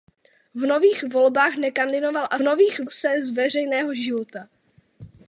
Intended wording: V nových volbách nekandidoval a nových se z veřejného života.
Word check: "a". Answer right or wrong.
right